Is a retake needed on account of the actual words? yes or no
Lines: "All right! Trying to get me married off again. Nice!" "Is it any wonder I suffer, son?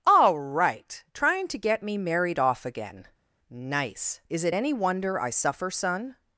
no